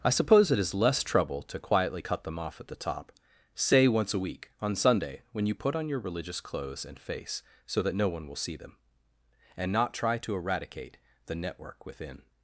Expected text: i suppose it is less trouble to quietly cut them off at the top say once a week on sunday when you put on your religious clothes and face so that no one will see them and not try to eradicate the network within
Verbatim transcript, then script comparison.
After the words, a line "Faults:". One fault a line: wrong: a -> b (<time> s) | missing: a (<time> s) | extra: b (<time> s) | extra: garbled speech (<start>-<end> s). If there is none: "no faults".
i suppose it is less trouble to quietly cut them off at the top say once a week on sunday when you put on your religious clothes and face so that no one will see them and not try to eradicate the network within
Faults:
no faults